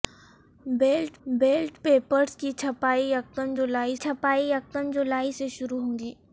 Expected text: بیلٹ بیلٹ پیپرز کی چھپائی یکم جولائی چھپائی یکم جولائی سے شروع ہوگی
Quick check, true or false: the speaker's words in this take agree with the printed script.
true